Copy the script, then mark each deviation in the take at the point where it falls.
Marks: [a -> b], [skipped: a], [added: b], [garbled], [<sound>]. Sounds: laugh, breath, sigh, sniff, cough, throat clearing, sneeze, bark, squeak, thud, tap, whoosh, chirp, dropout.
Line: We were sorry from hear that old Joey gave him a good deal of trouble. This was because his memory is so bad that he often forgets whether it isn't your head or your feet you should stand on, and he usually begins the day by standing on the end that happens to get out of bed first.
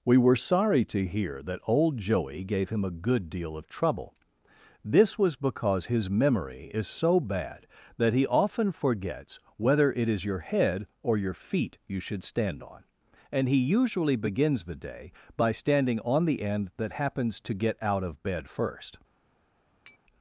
We were sorry [from -> to] hear that old Joey gave him a good deal of trouble. This was because his memory is so bad that he often forgets whether it [isn't -> is] your head or your feet you should stand on, and he usually begins the day by standing on the end that happens to get out of bed first. [tap]